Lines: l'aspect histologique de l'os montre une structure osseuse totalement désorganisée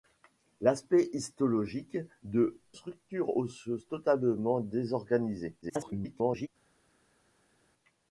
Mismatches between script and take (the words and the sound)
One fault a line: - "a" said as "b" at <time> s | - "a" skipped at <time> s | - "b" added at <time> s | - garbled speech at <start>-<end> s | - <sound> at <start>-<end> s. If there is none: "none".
- "l'os montre une" skipped at 2.6 s
- garbled speech at 5.6-6.5 s